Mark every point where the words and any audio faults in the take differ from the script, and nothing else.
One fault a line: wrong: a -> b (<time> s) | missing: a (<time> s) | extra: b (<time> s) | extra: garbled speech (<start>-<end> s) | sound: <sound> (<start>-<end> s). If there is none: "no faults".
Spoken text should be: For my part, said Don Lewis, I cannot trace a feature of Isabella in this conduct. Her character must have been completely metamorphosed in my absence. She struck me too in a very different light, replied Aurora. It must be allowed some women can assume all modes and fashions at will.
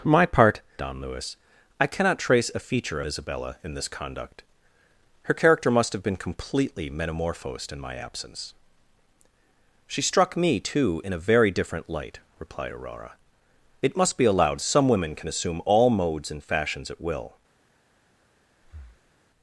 missing: said (0.6 s)
missing: of (3.0 s)
sound: breath (18.6-19.1 s)